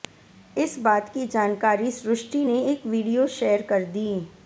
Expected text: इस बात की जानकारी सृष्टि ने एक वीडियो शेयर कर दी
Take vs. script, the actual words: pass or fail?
pass